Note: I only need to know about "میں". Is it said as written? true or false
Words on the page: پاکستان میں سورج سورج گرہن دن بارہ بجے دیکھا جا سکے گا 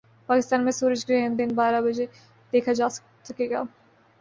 true